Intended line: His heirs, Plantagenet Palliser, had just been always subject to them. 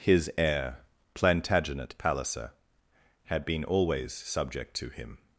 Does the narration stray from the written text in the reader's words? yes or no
yes